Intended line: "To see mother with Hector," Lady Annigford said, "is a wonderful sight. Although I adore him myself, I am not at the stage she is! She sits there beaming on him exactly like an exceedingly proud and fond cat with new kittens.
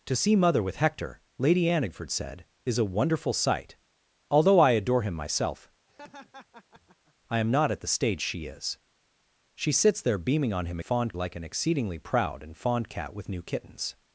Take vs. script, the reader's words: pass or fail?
fail